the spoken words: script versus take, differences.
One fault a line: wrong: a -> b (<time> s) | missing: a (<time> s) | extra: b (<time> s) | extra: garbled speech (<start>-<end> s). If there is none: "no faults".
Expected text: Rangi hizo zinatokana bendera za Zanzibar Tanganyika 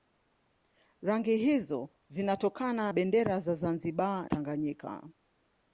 no faults